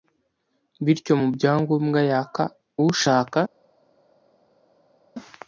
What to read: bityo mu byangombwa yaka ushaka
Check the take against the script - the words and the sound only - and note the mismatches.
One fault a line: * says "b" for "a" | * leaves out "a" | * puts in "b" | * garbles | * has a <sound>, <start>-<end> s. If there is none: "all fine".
all fine